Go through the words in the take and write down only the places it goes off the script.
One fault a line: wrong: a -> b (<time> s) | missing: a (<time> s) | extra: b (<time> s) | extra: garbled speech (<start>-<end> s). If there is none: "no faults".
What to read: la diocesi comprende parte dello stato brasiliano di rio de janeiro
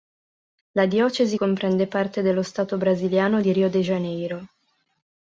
no faults